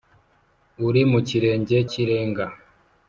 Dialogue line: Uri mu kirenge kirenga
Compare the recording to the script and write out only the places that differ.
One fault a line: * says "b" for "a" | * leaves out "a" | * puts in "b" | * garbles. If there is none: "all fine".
all fine